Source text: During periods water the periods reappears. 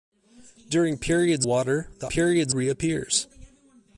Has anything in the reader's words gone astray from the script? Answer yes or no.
no